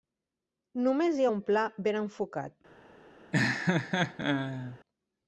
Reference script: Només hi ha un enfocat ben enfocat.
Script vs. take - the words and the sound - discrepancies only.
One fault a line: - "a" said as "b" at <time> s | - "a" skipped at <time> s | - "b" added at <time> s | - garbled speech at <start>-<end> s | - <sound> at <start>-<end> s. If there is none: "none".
- "enfocat" said as "pla" at 1.5 s
- laugh at 3.3-4.8 s